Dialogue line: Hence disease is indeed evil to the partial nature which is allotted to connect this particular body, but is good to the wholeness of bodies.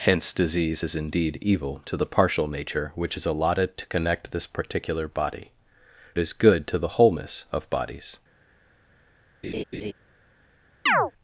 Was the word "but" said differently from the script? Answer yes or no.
yes